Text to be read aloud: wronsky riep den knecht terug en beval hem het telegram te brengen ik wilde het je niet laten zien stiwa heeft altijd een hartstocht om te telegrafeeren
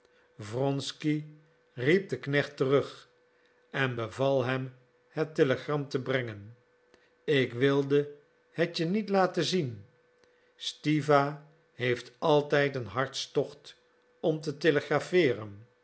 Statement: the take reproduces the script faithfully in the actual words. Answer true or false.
true